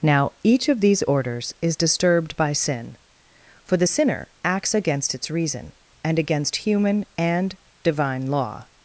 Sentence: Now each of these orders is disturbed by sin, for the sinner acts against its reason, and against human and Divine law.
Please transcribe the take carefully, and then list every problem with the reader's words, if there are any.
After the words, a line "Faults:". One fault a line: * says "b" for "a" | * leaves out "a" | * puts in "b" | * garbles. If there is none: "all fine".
Now each of these orders is disturbed by sin, for the sinner acts against its reason, and against human and Divine law.
Faults:
all fine